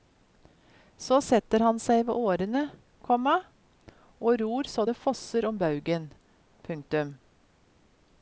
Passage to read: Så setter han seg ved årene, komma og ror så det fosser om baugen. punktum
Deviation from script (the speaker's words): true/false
false